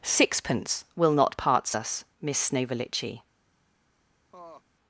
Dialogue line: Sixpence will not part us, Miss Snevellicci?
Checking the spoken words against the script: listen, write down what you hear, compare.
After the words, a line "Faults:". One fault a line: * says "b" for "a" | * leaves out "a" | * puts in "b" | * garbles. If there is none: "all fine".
Sixpence will not parts us, Miss Snevellicci?
Faults:
* says "parts" for "part"